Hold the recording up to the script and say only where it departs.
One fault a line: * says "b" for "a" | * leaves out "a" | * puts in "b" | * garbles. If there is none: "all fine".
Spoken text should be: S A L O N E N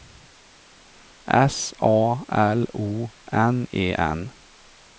all fine